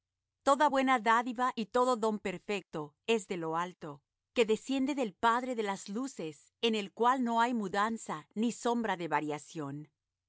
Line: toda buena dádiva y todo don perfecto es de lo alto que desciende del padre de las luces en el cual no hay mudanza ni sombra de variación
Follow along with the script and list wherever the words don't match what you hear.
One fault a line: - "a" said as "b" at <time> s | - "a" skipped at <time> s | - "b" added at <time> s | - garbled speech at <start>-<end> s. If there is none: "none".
none